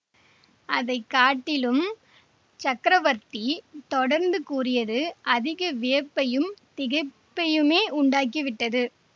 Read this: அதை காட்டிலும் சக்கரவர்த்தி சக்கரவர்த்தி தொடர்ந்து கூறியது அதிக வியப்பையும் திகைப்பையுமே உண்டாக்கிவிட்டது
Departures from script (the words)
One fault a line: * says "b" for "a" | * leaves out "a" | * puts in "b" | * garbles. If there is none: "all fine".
* leaves out "சக்கரவர்த்தி"